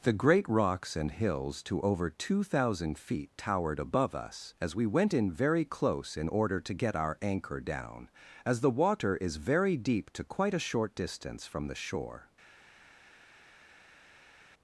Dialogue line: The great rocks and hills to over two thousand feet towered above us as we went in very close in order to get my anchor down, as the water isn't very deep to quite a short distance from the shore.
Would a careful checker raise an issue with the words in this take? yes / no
yes